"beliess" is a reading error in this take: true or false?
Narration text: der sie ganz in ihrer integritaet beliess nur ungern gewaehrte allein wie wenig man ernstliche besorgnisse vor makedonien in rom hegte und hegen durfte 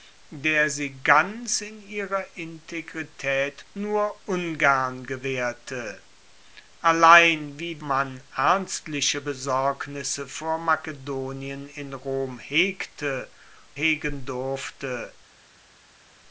true